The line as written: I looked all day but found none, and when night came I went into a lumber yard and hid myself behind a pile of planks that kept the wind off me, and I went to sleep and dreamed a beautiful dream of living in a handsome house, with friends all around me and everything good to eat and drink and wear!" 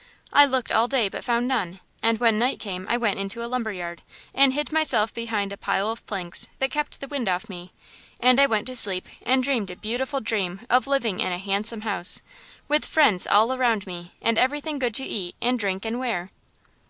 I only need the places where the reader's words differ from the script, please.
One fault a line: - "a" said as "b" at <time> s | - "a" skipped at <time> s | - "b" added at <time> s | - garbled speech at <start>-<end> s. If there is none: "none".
none